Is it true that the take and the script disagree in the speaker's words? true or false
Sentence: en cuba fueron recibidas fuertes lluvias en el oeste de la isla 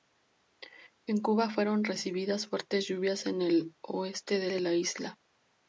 true